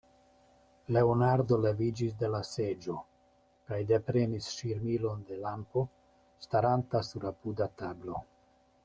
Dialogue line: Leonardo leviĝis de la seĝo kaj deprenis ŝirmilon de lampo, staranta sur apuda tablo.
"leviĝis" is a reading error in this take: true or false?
false